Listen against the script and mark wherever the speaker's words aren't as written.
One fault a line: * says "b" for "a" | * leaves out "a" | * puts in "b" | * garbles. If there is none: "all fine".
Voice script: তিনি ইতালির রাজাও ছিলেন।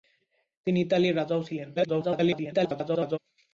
* garbles